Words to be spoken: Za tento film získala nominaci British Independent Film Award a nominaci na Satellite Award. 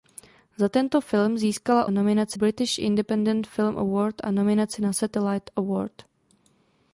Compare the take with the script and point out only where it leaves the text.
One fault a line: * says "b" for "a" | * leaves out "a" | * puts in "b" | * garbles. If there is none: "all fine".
all fine